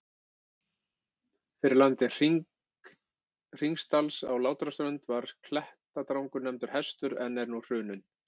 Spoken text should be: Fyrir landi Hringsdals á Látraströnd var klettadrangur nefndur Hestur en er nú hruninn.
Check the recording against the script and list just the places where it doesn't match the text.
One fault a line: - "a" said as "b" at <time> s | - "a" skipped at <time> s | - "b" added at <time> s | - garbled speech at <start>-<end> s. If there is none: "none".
none